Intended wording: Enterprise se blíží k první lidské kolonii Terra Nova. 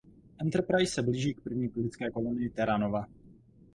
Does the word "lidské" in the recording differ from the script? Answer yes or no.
no